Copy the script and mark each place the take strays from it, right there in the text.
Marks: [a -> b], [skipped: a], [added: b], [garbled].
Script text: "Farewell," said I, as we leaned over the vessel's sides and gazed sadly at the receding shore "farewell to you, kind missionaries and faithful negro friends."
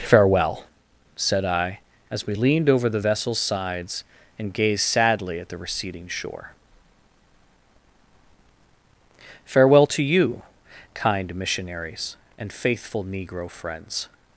"Farewell," said I, as we leaned over the vessel's sides and gazed sadly at the receding shore "farewell to you, kind missionaries and faithful negro friends."